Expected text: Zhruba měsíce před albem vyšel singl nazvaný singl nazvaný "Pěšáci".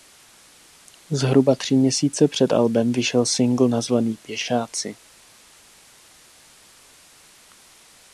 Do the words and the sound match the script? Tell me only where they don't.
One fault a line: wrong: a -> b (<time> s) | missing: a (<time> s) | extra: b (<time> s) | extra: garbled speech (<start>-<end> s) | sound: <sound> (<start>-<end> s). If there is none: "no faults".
extra: tři (1.6 s)
missing: singl nazvaný (4.2 s)